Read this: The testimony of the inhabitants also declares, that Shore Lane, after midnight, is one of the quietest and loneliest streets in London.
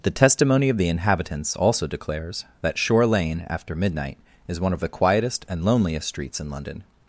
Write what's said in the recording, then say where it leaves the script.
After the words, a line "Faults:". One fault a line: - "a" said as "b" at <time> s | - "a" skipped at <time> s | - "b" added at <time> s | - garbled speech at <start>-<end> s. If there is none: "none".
The testimony of the inhabitants also declares, that Shore Lane, after midnight, is one of the quietest and loneliest streets in London.
Faults:
none